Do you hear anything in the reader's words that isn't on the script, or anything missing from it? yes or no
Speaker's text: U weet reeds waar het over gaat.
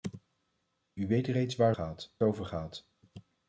yes